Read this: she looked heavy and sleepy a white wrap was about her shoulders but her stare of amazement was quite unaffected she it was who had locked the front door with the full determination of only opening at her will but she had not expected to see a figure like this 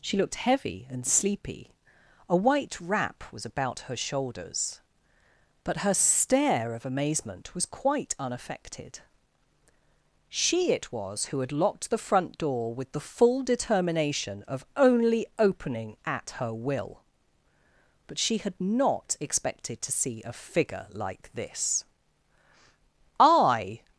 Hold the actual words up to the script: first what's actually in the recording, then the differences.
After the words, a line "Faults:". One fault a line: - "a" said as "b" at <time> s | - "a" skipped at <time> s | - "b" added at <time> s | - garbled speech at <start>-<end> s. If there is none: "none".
she looked heavy and sleepy a white wrap was about her shoulders but her stare of amazement was quite unaffected she it was who had locked the front door with the full determination of only opening at her will but she had not expected to see a figure like this i
Faults:
- "i" added at 23.2 s